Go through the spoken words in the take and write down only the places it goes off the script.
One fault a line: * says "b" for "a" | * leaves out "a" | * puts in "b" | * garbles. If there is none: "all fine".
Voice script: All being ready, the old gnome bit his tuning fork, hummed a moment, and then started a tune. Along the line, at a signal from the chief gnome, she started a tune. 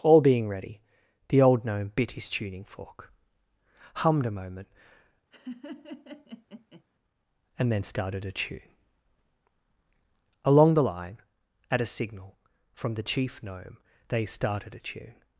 * says "they" for "she"